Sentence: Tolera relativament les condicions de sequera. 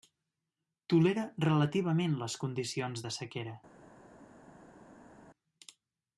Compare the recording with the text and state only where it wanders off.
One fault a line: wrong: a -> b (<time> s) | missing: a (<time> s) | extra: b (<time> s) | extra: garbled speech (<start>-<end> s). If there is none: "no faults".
no faults